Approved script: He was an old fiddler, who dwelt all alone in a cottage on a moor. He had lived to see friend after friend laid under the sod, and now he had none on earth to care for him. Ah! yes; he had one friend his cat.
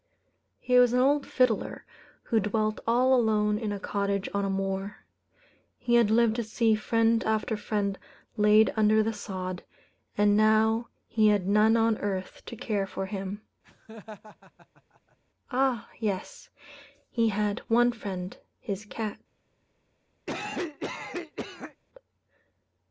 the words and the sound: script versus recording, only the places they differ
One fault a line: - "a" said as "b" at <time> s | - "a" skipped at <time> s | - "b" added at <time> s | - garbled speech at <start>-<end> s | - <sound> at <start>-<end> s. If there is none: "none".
- laugh at 13.6-15.2 s
- cough at 20.3-21.8 s